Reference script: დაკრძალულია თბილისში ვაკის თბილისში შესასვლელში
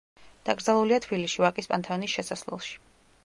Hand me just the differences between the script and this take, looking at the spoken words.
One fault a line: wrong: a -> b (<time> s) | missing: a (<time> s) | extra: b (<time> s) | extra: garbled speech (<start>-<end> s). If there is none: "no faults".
wrong: თბილისში -> პანთეონის (1.7 s)